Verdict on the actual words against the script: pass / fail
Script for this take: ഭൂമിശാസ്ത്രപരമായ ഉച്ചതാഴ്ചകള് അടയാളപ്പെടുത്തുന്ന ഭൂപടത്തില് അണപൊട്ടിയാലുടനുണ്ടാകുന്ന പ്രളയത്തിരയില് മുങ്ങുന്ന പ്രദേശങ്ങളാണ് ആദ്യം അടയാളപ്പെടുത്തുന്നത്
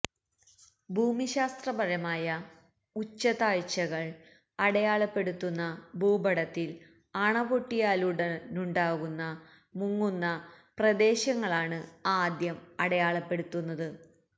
fail